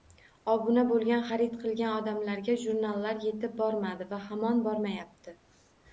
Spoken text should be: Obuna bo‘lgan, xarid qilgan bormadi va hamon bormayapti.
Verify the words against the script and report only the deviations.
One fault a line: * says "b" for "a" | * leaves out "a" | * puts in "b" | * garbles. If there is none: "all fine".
* puts in "odamlarga jurnallar yetib"